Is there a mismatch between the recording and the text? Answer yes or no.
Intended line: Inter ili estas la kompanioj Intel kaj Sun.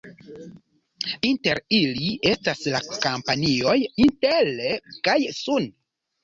no